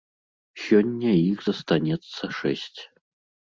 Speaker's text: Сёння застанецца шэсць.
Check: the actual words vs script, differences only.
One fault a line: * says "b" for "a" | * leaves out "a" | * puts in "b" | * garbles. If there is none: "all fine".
* puts in "іх"